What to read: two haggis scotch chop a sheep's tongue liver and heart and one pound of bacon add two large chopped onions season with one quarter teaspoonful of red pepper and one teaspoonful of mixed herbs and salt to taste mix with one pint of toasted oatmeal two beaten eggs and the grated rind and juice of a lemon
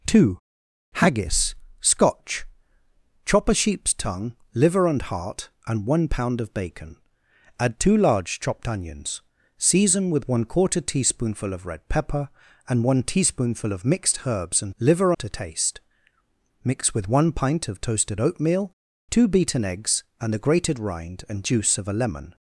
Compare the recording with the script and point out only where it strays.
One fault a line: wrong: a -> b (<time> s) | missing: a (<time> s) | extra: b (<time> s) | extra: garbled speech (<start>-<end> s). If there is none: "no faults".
wrong: salt -> liver (14.8 s)